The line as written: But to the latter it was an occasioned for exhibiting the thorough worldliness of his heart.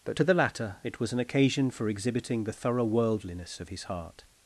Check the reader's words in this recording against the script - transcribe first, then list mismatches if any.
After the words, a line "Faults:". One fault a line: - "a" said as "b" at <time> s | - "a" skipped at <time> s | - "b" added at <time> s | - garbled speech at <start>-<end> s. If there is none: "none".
But to the latter it was an occasion for exhibiting the thorough worldliness of his heart.
Faults:
- "occasioned" said as "occasion" at 1.2 s